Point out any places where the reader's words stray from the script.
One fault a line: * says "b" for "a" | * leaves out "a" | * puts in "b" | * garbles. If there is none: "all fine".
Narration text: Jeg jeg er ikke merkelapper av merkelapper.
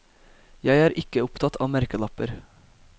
* leaves out "jeg"
* says "opptatt" for "merkelapper"